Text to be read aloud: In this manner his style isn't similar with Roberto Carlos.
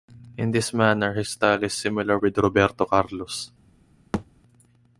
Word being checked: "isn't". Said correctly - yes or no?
no